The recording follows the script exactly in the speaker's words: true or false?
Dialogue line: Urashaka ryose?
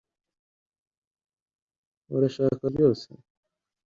true